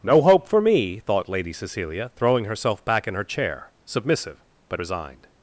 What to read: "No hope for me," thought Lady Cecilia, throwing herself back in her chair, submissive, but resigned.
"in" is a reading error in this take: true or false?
false